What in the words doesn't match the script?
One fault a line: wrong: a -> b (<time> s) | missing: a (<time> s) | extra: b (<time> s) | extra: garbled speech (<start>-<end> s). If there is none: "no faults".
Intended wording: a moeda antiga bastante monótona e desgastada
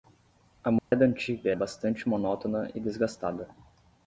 no faults